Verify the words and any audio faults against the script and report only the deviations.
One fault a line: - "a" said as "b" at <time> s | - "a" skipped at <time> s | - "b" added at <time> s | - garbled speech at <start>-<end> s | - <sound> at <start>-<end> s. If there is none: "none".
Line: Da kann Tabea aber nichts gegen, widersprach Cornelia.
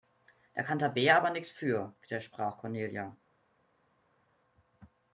- "gegen" said as "für" at 1.5 s